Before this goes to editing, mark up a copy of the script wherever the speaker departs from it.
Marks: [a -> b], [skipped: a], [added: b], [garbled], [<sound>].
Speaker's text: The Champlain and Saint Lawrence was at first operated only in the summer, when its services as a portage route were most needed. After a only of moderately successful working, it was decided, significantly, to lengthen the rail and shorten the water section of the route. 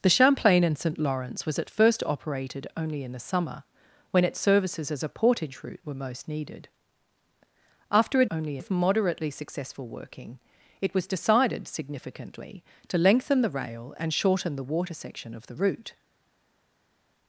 The Champlain and Saint Lawrence was at first operated only in the summer, when its services as a portage route were most needed. After a only of moderately successful working, it was decided, significantly, to lengthen the rail and shorten the water section of the route.